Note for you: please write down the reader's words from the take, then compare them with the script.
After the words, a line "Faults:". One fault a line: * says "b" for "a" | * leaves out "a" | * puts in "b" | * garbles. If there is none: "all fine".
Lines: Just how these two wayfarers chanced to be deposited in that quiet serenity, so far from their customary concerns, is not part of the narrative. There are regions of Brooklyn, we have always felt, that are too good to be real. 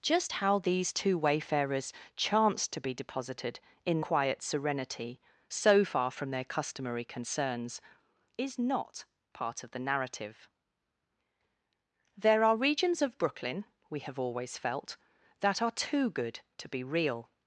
Just how these two wayfarers chanced to be deposited in quiet serenity, so far from their customary concerns, is not part of the narrative. There are regions of Brooklyn, we have always felt, that are too good to be real.
Faults:
* leaves out "that"